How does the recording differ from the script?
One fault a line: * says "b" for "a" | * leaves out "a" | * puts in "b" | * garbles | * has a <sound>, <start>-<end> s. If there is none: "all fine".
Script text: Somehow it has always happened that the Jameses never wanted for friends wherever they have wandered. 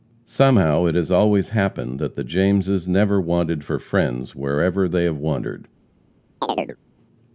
* has a chirp, 6.4-6.8 s